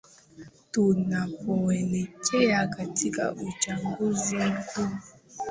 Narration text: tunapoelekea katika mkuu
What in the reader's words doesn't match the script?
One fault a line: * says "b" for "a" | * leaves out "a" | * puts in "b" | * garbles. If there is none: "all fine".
* puts in "uchaguzi"